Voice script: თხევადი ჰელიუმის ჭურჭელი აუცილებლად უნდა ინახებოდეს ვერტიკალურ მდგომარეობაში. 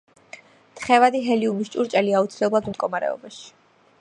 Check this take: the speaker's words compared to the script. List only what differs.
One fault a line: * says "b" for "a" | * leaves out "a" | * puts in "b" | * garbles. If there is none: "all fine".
* leaves out "უნდა ინახებოდეს ვერტიკალურ"